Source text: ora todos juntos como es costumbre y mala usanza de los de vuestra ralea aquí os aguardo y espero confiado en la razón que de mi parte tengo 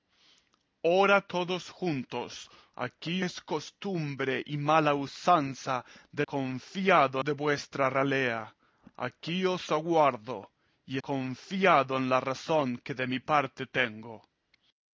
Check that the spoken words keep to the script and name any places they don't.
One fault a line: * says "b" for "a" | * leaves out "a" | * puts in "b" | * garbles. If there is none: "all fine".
* says "aquí" for "como"
* says "confiado" for "los"
* leaves out "espero"